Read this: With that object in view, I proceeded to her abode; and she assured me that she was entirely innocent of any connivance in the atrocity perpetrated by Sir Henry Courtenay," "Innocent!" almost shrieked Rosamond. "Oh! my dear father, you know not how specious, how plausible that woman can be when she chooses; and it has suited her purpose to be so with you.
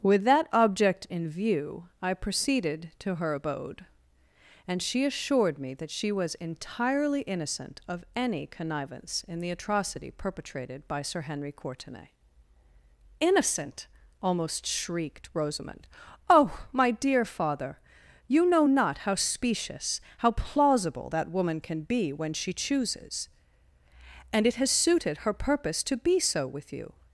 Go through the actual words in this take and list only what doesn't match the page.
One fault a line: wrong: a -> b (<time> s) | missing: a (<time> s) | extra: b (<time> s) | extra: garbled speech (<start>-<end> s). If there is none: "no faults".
no faults